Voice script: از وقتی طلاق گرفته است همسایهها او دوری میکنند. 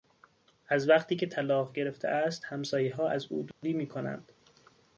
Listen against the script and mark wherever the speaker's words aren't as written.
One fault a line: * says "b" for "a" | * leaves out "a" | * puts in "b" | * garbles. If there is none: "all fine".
* puts in "که"
* puts in "از"